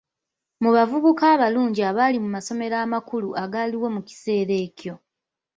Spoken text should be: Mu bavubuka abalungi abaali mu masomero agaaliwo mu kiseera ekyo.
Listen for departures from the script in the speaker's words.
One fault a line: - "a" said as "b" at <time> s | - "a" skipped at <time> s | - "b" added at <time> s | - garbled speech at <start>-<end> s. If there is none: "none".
- "amakulu" added at 2.9 s